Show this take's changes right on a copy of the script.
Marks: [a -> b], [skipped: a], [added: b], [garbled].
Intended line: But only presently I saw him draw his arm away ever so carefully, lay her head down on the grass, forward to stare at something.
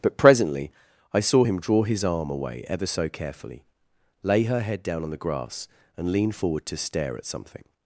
But [skipped: only] presently I saw him draw his arm away ever so carefully, lay her head down on the grass, [added: and lean] forward to stare at something.